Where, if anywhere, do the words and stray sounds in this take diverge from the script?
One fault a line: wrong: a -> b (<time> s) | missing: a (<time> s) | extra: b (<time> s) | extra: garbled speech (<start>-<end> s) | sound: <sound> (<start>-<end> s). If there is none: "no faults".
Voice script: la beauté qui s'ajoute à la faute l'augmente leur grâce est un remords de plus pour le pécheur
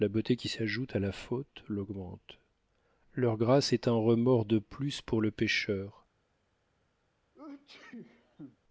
sound: sneeze (7.3-8.6 s)